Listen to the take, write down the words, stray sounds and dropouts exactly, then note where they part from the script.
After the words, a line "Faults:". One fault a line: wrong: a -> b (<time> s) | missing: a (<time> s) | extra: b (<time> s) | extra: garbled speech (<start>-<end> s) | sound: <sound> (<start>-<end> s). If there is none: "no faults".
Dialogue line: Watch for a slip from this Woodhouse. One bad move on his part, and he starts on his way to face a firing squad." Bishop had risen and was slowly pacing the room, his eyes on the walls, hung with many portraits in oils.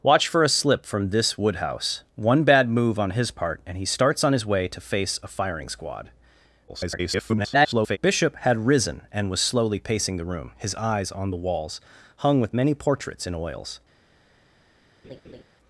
Watch for a slip from this Woodhouse. One bad move on his part, and he starts on his way to face a firing squad." [garbled] Bishop had risen and was slowly pacing the room, his eyes on the walls, hung with many portraits in oils.
Faults:
extra: garbled speech (6.7-8.0 s)
sound: laugh (15.0-15.4 s)